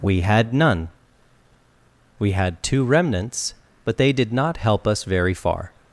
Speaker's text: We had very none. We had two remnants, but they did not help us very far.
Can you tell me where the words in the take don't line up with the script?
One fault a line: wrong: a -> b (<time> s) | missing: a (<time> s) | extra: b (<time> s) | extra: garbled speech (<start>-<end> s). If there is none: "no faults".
missing: very (0.5 s)